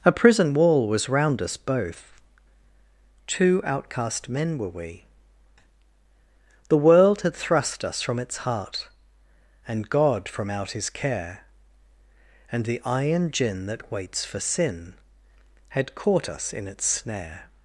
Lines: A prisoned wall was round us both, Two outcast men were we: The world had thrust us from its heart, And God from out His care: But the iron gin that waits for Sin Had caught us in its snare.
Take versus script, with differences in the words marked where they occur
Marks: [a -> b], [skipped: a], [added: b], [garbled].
A [prisoned -> prison] wall was round us both, Two outcast men were we: The world had thrust us from its heart, And God from out His care: [But -> And] the iron gin that waits for Sin Had caught us in its snare.